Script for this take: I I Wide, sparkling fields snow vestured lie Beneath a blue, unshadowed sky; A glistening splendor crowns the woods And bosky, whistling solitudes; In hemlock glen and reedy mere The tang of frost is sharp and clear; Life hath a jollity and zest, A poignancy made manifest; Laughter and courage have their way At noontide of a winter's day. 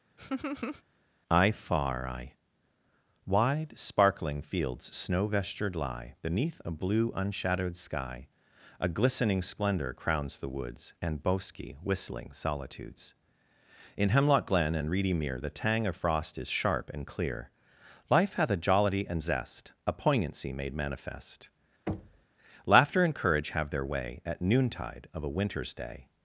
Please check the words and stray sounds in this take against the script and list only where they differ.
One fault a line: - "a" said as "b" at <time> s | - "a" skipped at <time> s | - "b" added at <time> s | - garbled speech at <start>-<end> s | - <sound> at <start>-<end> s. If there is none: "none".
- laugh at 0.2-0.8 s
- "far" added at 1.5 s
- thud at 21.9-22.2 s